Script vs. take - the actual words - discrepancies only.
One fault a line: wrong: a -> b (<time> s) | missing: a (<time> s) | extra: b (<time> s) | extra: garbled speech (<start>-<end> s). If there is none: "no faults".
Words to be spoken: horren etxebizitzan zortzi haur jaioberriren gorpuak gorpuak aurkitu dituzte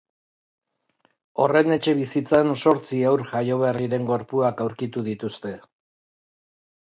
missing: gorpuak (4.6 s)